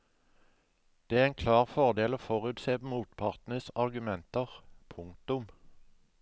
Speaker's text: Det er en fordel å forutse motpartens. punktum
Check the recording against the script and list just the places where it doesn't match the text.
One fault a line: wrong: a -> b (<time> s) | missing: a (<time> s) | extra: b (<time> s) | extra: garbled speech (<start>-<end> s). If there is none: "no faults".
extra: klar (1.4 s)
extra: argumenter (3.9 s)